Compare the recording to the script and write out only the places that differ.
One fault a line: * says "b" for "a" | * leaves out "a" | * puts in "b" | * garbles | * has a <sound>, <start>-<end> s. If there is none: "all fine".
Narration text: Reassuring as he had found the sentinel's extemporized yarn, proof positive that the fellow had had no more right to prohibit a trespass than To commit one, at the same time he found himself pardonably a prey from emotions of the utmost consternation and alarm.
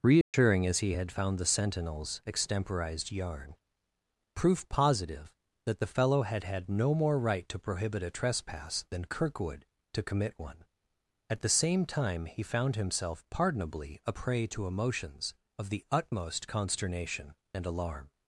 * has a dropout, 0.2-0.3 s
* puts in "Kirkwood"
* says "to" for "from"